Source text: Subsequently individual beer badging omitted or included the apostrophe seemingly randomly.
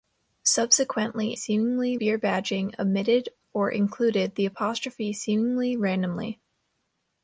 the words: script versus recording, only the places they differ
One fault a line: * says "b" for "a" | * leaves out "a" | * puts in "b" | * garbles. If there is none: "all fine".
* says "seemingly" for "individual"